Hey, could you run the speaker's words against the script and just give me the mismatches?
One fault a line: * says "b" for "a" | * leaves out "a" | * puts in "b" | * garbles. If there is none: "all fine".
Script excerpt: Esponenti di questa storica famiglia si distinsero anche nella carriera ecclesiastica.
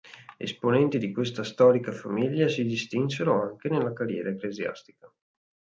all fine